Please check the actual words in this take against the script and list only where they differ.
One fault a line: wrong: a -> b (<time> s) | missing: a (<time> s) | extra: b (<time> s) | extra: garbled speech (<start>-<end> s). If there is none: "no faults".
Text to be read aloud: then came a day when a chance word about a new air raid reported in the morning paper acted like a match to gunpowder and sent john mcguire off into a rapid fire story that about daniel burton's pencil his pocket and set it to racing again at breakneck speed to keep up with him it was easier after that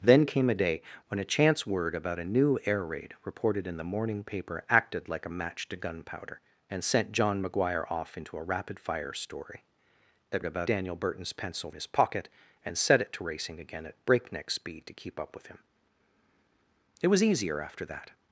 no faults